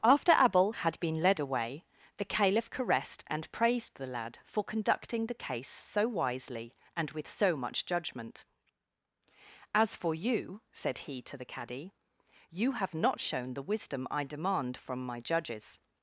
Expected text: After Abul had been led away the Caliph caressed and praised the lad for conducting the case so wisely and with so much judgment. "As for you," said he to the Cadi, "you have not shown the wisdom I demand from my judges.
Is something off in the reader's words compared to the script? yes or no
no